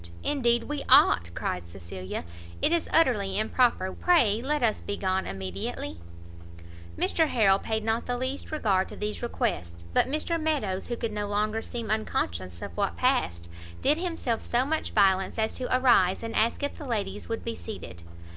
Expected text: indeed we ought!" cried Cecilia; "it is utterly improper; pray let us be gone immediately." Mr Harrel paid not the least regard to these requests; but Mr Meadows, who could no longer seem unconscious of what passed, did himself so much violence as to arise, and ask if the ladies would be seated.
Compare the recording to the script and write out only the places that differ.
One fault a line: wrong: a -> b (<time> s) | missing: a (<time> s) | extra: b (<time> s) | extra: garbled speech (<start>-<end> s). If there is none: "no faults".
no faults